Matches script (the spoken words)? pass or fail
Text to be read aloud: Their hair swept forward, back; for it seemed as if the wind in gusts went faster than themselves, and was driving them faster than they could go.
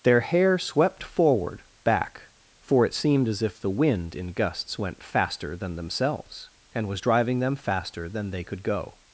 pass